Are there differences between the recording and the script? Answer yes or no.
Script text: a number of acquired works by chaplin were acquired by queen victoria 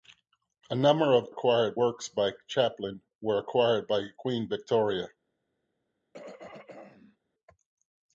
no